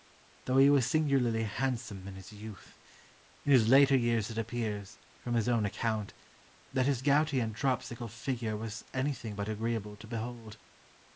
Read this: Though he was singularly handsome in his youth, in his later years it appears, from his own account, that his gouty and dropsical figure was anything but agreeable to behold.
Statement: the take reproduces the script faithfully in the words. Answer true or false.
true